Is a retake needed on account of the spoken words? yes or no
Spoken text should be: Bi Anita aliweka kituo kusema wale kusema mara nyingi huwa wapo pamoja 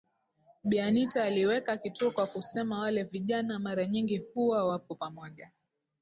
yes